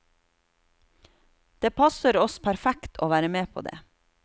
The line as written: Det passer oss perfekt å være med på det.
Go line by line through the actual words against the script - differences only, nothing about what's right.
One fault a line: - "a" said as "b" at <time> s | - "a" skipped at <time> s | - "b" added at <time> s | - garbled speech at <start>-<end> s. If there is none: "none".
none